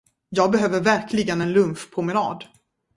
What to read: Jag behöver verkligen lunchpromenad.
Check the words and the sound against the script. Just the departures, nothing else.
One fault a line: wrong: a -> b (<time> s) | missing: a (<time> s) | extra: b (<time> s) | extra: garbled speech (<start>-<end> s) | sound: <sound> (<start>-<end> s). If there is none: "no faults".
extra: en (1.4 s)